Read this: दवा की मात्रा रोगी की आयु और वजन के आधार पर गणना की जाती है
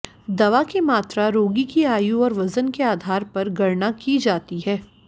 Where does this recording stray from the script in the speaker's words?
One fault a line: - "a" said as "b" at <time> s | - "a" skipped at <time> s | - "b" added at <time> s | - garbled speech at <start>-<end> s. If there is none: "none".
none